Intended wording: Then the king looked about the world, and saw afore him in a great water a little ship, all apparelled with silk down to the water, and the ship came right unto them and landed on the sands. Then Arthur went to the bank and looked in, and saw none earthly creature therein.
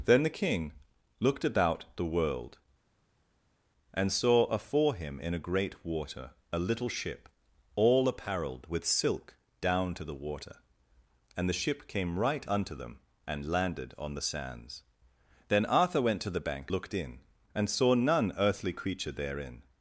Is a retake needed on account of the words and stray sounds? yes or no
yes